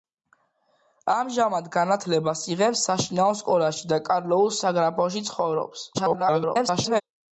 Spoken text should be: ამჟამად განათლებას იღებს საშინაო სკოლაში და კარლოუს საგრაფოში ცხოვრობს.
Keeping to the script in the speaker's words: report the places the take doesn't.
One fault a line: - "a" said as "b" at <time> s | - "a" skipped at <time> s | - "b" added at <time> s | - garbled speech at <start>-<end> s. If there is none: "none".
- garbled speech at 5.9-7.0 s